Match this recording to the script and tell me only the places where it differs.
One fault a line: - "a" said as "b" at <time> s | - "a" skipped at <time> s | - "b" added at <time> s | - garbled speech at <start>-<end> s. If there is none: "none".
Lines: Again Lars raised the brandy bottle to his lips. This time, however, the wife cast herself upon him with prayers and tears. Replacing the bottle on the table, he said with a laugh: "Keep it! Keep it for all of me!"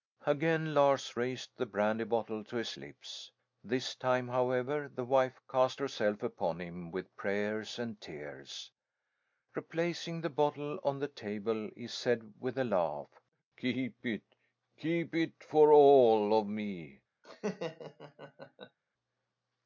none